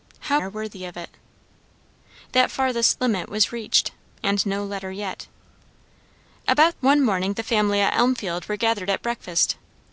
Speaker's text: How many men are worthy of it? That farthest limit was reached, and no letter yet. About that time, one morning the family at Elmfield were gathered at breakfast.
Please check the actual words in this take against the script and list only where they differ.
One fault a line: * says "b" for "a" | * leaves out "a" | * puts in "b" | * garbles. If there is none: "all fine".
* leaves out "many men"
* leaves out "that time"